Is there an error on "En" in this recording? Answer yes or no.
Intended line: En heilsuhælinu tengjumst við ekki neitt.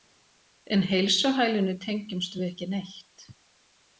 no